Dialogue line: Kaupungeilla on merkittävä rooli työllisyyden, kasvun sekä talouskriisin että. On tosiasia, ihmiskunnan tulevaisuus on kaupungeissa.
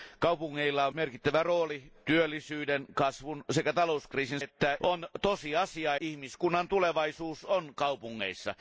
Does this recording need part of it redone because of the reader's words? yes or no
no